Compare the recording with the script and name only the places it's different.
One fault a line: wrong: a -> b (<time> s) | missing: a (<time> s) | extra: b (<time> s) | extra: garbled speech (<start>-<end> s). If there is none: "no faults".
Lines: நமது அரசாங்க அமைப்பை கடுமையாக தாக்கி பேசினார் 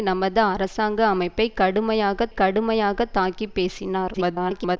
extra: கடுமையாக (2.3 s)
extra: garbled speech (4.1-4.8 s)